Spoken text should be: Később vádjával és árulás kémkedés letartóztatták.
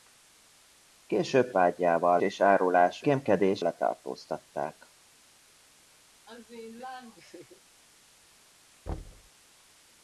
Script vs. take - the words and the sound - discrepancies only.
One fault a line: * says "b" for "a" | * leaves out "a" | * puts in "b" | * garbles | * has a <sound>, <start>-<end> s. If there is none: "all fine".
* has a laugh, 6.3-7.6 s
* has a thud, 8.9-9.3 s